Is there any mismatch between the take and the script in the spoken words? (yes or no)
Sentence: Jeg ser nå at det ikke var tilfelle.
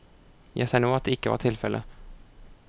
no